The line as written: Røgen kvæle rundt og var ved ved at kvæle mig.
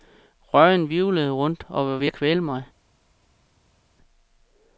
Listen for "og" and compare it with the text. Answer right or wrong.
right